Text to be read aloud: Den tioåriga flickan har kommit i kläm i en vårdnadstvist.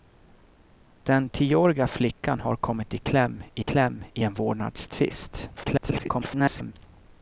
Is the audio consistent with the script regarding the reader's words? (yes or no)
no